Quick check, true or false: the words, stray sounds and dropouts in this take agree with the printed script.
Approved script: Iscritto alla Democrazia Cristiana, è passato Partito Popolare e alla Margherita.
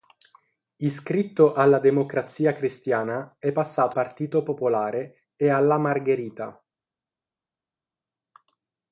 true